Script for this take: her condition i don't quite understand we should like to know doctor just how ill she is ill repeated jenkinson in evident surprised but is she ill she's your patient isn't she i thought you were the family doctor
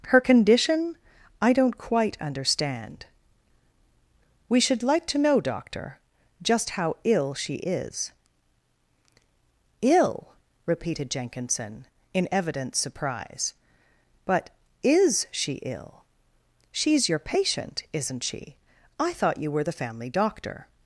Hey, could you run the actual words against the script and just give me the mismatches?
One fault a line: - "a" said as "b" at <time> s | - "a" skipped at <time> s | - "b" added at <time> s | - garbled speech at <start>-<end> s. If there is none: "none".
- "surprised" said as "surprise" at 12.8 s